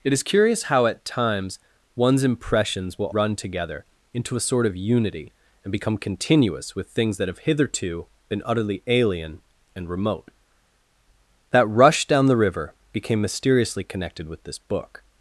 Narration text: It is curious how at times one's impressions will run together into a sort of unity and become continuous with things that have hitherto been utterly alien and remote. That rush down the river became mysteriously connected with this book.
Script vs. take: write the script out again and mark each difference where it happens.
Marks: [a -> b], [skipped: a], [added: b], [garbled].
It is curious how at times one's impressions will run together into a sort of unity and become continuous with things that have hitherto been utterly alien and remote. That rush down the river became mysteriously connected with this book.